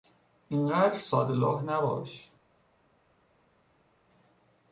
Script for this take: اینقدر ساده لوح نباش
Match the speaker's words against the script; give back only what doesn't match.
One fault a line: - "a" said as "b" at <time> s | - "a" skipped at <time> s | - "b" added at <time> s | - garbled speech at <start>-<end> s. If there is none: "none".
none